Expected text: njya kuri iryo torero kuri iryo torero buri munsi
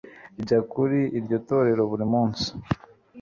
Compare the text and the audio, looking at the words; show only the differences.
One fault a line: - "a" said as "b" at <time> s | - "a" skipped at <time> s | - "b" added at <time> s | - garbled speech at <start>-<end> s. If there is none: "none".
- "kuri iryo torero" skipped at 1.8 s